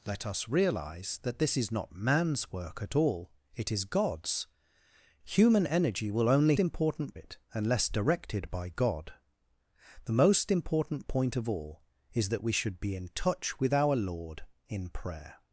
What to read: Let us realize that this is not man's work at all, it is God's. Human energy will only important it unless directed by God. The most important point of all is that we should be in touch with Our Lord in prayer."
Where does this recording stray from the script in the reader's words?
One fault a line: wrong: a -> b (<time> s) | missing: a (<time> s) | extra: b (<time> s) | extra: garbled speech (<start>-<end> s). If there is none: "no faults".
no faults